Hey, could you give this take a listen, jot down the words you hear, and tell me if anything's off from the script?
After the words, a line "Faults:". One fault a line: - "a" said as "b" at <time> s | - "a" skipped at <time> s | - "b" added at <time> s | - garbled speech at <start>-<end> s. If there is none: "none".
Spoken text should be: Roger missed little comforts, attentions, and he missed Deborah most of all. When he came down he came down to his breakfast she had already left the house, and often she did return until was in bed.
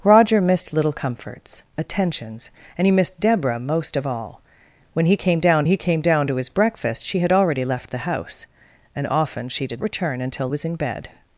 Roger missed little comforts, attentions, and he missed Deborah most of all. When he came down he came down to his breakfast she had already left the house, and often she did return until was in bed.
Faults:
none